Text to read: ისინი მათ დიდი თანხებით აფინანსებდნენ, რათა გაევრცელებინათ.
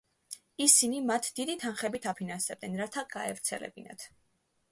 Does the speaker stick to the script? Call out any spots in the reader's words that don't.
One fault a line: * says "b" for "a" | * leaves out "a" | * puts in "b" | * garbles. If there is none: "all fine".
all fine